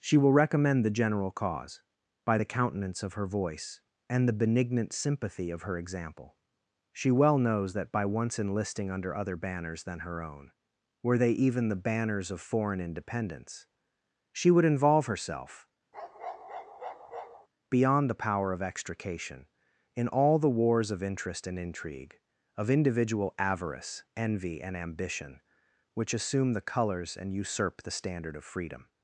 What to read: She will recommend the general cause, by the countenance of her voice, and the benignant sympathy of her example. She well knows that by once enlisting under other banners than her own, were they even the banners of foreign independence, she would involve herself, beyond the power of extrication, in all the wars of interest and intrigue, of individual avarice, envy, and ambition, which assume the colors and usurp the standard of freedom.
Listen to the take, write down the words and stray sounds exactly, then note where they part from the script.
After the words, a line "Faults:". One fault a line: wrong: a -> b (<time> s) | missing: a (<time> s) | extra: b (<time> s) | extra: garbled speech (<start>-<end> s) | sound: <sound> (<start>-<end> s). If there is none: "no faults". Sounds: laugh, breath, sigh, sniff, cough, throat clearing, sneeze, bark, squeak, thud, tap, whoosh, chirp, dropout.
She will recommend the general cause, by the countenance of her voice, and the benignant sympathy of her example. She well knows that by once enlisting under other banners than her own, were they even the banners of foreign independence, she would involve herself, beyond the power of extrication, in all the wars of interest and intrigue, of individual avarice, envy, and ambition, which assume the colors and usurp the standard of freedom.
Faults:
sound: bark (15.9-17.5 s)